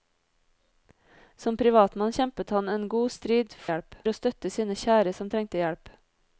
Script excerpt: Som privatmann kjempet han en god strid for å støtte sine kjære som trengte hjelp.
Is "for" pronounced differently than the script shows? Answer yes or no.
yes